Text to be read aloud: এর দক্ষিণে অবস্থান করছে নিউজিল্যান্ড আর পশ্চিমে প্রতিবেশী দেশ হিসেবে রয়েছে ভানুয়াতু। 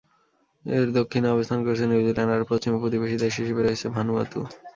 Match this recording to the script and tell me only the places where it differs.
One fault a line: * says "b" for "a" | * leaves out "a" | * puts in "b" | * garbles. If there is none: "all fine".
all fine